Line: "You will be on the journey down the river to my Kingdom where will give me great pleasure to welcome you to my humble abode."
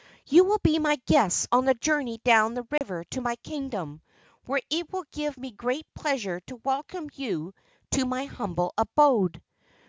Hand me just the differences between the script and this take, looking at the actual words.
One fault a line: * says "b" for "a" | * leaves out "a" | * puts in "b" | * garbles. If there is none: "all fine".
* puts in "my guests"
* puts in "it"